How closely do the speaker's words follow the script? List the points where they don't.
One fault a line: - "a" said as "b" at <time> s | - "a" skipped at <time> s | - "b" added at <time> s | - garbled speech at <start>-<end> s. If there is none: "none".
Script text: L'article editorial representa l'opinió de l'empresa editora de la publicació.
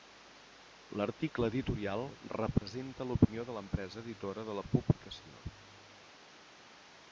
none